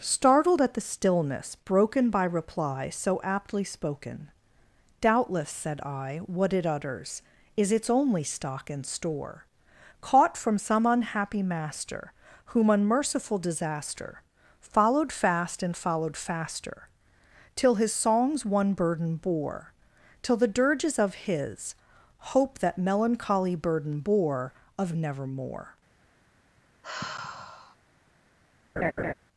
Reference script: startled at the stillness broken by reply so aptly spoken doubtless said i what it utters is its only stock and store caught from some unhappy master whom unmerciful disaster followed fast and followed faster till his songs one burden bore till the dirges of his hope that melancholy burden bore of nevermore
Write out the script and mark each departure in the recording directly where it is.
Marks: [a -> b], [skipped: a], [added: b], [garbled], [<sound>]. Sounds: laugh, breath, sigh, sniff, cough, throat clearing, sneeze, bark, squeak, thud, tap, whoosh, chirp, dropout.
startled at the stillness broken by reply so aptly spoken doubtless said i what it utters is its only stock and store caught from some unhappy master whom unmerciful disaster followed fast and followed faster till his songs one burden bore till the dirges of his hope that melancholy burden bore of nevermore [sigh] [laugh]